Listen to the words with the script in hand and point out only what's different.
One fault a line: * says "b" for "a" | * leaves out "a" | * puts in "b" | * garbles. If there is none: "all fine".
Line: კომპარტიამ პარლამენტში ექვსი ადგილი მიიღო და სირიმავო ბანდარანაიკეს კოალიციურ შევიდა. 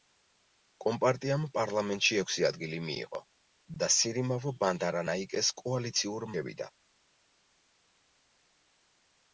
all fine